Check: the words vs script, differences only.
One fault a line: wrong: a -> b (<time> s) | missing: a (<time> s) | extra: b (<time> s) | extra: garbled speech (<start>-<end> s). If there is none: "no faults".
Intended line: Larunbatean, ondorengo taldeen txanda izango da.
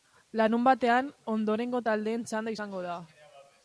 no faults